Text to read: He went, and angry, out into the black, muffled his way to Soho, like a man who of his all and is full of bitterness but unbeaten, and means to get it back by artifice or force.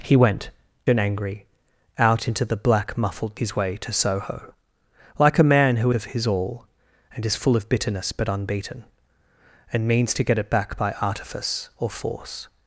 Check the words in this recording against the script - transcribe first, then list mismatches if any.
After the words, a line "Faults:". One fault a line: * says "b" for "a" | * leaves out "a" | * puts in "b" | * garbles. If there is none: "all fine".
He went, and angry, out into the black, muffled his way to Soho, like a man who of his all and is full of bitterness but unbeaten, and means to get it back by artifice or force.
Faults:
all fine